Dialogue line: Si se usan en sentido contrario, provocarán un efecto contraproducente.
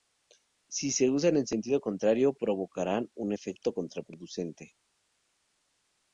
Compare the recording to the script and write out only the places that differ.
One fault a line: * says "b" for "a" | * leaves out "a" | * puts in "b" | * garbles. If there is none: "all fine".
all fine